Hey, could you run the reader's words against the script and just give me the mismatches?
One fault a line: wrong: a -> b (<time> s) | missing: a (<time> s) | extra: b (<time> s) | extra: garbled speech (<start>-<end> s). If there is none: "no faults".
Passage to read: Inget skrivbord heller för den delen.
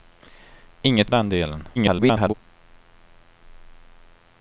missing: skrivbord heller för (1.1 s)
extra: garbled speech (1.8-2.3 s)